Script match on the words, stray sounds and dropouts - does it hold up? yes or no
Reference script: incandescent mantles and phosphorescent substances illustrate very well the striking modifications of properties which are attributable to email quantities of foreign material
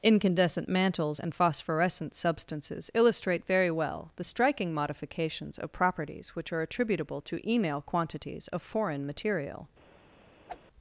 no